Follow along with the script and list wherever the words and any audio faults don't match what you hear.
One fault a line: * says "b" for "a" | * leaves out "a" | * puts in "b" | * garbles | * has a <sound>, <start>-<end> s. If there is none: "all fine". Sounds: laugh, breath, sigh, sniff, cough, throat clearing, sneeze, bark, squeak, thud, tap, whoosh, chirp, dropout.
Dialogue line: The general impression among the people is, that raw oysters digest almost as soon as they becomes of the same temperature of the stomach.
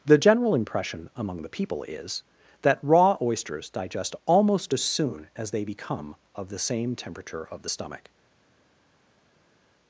* says "become" for "becomes"